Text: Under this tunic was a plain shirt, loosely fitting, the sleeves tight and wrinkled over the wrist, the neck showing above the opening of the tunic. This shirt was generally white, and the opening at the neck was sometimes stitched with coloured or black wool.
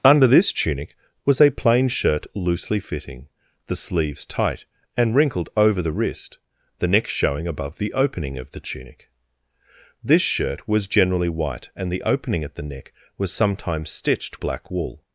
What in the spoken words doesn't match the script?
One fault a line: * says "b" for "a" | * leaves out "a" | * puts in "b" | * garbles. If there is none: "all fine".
* leaves out "with coloured or"